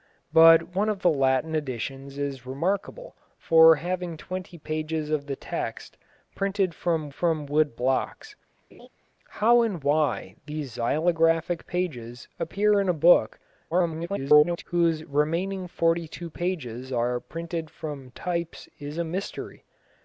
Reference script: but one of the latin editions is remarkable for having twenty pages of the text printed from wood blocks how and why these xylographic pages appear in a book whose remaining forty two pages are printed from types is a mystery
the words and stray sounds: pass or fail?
fail